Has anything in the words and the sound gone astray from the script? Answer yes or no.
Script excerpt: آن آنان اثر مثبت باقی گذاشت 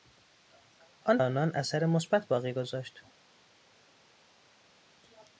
no